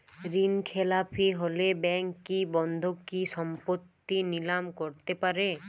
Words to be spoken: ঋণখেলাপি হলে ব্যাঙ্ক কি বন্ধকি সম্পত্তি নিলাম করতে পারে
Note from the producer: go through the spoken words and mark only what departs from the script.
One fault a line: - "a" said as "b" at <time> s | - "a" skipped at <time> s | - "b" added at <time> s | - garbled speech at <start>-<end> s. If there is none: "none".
none